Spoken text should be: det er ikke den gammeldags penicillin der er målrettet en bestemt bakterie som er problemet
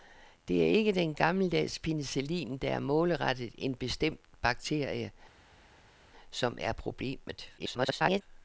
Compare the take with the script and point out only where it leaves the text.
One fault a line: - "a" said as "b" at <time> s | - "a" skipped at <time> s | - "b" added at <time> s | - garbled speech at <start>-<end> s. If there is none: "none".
- garbled speech at 7.6-8.2 s